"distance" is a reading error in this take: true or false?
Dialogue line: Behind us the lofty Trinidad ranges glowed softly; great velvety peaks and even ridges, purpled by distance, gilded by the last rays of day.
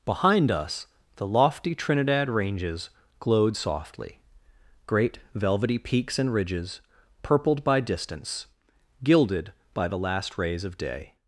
false